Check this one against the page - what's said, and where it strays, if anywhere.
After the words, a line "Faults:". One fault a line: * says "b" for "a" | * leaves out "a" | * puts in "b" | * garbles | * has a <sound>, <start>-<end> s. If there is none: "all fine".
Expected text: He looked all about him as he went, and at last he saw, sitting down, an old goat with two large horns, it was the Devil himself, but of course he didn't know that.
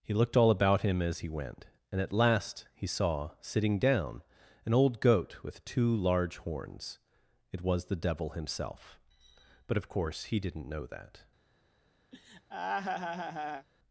He looked all about him as he went, and at last he saw, sitting down, an old goat with two large horns, it was the Devil himself, but of course he didn't know that.
Faults:
* has a laugh, 12.1-13.7 s